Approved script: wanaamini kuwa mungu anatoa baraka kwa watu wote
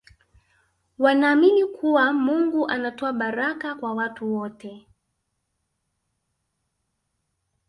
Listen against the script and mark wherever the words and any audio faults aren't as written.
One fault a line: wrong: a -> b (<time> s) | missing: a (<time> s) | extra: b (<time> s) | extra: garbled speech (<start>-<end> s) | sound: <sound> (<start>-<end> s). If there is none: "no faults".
no faults